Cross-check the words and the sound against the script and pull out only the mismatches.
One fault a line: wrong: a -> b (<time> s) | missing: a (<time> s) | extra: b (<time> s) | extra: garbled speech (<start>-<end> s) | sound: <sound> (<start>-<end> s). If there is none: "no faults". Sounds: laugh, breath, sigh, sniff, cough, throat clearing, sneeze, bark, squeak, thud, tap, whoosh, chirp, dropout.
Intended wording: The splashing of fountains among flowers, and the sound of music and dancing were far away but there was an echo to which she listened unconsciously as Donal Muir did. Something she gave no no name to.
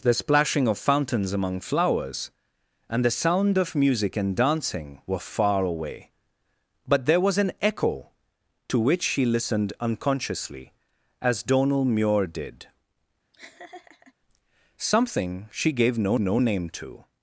sound: laugh (13.3-14.1 s)